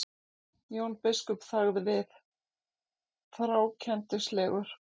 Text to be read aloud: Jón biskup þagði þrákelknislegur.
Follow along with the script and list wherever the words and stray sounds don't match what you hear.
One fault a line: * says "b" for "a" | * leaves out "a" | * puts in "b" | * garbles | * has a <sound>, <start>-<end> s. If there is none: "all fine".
* puts in "við"